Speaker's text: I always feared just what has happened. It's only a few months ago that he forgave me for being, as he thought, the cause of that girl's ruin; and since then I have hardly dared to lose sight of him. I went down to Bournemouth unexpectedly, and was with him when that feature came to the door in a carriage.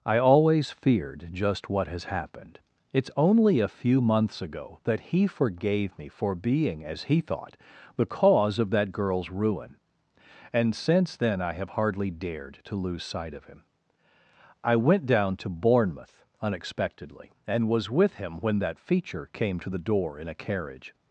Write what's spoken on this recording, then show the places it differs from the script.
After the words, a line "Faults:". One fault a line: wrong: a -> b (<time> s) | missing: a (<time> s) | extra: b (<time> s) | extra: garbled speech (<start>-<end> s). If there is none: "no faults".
I always feared just what has happened. It's only a few months ago that he forgave me for being, as he thought, the cause of that girl's ruin; and since then I have hardly dared to lose sight of him. I went down to Bournemouth unexpectedly, and was with him when that feature came to the door in a carriage.
Faults:
no faults